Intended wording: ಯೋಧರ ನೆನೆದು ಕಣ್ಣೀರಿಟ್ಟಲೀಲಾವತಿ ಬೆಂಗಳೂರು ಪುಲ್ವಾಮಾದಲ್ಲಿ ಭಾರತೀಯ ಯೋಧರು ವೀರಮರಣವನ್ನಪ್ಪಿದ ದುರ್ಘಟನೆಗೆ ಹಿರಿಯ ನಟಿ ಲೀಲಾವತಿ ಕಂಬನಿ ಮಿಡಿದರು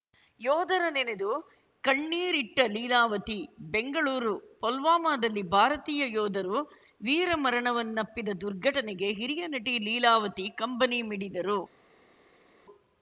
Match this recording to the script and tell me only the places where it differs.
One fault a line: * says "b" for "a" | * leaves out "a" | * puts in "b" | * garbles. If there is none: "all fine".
all fine